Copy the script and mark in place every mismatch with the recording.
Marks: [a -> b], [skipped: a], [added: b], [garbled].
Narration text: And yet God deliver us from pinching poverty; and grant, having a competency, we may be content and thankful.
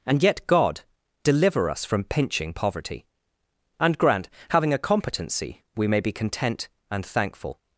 And yet God deliver us from pinching poverty; and grant, having a competency, we may be content and thankful.